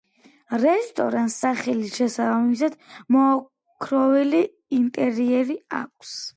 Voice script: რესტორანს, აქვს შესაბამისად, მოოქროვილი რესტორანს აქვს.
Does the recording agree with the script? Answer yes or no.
no